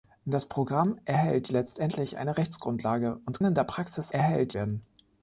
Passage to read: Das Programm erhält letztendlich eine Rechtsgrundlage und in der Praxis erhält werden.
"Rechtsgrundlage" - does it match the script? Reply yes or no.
yes